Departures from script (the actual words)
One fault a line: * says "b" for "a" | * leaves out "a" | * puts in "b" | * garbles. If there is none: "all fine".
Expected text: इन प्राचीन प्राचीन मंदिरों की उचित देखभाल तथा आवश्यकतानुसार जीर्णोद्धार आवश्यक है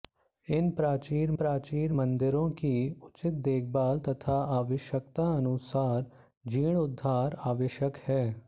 all fine